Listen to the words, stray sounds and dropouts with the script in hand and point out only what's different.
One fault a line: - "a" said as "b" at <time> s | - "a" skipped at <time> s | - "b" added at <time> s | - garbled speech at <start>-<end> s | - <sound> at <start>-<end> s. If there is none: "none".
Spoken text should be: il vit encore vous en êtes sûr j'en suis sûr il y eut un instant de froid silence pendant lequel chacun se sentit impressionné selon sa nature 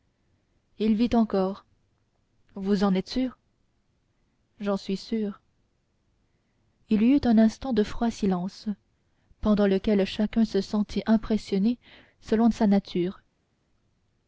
none